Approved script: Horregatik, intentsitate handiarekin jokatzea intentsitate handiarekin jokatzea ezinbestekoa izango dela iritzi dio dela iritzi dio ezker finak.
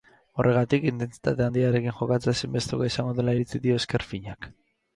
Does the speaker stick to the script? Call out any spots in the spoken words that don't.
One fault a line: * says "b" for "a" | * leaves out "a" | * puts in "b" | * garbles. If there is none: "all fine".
* leaves out "intentsitate handiarekin jokatzea"
* leaves out "dela iritzi dio"